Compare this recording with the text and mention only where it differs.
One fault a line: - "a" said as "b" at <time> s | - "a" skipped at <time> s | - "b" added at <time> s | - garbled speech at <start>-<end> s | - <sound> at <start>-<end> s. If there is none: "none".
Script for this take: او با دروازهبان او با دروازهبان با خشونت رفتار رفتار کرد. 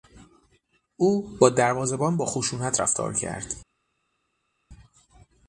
- "او" skipped at 2.2 s
- "دروازهبان با" skipped at 2.2 s
- "رفتار" skipped at 3.1 s